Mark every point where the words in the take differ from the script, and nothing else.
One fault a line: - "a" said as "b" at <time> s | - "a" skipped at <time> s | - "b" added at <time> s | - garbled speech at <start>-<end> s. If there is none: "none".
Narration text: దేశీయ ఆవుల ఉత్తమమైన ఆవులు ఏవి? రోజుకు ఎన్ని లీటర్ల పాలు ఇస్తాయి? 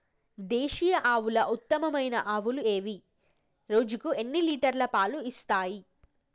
none